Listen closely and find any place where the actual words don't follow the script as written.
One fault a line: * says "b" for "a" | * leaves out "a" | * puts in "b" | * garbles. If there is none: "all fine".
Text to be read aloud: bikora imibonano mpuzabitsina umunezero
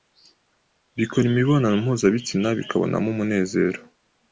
* puts in "bikabonamo"